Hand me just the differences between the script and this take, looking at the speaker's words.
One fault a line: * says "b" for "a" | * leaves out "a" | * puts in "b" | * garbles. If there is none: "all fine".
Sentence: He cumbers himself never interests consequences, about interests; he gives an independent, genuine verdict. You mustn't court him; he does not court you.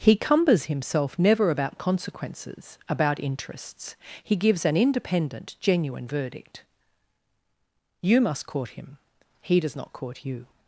* says "about" for "interests"
* says "must" for "mustn't"